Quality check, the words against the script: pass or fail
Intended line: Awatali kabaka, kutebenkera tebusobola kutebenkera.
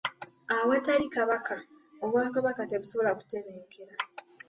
fail